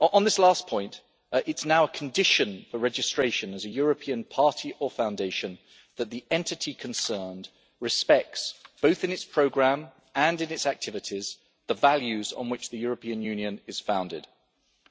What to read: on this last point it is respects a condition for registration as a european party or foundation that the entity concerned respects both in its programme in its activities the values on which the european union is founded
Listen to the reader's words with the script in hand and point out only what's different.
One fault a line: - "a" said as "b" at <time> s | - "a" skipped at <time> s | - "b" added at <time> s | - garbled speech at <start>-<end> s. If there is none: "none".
- "respects" said as "now" at 1.6 s
- "and" added at 10.1 s